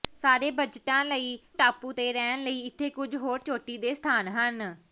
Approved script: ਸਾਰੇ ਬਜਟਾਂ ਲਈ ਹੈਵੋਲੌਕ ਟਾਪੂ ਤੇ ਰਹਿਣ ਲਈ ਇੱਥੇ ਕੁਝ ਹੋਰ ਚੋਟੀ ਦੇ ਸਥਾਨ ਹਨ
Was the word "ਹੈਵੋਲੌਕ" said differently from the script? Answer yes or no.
yes